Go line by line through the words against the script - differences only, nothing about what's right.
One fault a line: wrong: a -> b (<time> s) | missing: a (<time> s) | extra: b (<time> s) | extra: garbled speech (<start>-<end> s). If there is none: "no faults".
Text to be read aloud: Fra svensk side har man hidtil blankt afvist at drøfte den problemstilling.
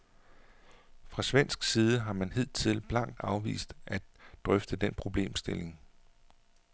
no faults